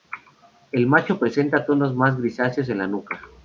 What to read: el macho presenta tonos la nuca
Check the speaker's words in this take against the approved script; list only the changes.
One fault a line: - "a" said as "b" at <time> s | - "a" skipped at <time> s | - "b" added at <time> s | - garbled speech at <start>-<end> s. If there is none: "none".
- "más grisáceos en" added at 1.9 s